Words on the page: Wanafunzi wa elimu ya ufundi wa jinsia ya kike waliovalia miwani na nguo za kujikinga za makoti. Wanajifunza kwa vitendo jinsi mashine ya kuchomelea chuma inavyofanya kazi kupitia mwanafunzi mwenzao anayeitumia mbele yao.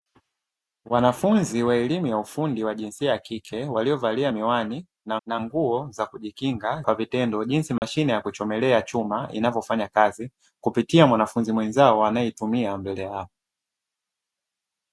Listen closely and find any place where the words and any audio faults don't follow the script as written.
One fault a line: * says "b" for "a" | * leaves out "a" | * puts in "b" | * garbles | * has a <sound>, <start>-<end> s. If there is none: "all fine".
* puts in "na"
* leaves out "za makoti Wanajifunza"
* has a dropout, 7.8-7.8 s